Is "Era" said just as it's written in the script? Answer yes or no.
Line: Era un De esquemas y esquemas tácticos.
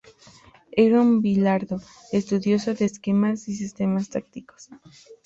yes